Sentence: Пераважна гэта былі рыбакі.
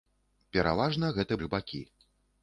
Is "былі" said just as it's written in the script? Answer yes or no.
no